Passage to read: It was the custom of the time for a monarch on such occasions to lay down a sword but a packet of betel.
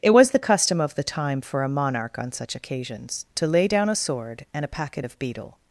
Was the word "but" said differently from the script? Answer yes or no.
yes